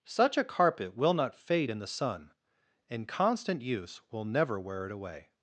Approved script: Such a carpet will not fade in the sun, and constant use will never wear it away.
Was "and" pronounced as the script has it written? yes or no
yes